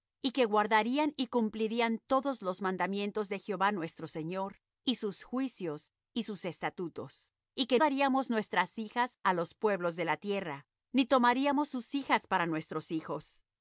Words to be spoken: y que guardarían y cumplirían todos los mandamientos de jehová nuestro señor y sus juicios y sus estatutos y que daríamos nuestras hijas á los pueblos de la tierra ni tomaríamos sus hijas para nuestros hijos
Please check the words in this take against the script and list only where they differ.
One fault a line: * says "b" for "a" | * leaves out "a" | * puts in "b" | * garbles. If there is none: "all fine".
all fine